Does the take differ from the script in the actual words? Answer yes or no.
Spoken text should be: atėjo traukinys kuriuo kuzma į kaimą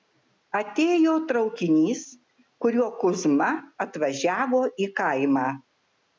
yes